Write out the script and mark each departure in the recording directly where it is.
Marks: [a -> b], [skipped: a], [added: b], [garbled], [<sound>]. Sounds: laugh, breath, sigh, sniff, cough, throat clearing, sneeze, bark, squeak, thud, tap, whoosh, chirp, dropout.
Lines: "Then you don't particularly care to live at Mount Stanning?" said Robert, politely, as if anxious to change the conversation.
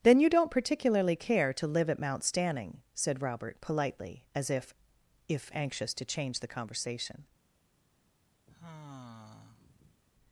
"Then you don't particularly care to live at Mount Stanning?" said Robert, politely, as if [added: if] anxious to change the conversation. [sigh]